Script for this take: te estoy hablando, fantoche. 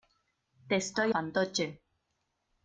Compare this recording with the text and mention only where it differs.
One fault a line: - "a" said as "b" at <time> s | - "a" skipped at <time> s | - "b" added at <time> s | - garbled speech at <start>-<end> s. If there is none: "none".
- "hablando" skipped at 1.1 s